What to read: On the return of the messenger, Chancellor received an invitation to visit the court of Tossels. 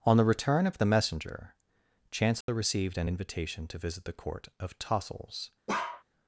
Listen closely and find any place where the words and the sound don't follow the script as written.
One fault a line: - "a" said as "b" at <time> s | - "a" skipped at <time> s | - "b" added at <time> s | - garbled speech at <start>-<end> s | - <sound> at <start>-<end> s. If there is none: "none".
- dropout at 2.4-2.5 s
- bark at 5.7-6.0 s